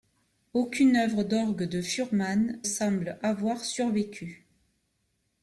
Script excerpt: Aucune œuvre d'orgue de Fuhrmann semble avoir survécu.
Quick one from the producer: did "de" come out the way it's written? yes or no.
yes